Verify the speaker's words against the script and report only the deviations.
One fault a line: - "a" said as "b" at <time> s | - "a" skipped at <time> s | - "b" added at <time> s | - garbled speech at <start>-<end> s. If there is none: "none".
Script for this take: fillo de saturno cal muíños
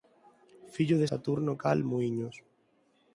none